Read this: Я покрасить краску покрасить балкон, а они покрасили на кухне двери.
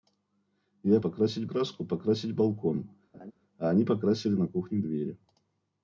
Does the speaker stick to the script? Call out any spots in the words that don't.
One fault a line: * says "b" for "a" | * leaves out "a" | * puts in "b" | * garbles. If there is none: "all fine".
all fine